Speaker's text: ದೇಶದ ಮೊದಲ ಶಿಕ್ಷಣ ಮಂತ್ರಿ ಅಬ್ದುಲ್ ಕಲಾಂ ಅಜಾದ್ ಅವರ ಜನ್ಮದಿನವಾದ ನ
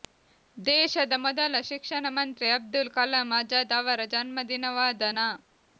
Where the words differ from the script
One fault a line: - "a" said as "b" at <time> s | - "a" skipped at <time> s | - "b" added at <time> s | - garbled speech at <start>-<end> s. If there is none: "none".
none